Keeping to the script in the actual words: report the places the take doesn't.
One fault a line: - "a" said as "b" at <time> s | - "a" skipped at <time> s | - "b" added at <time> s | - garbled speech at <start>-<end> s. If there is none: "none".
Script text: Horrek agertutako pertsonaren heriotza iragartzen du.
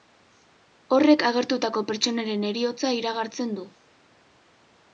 none